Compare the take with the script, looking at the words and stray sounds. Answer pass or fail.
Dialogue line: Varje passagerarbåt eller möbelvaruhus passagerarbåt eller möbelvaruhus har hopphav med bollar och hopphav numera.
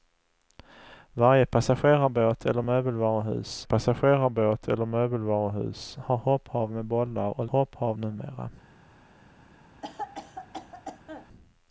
fail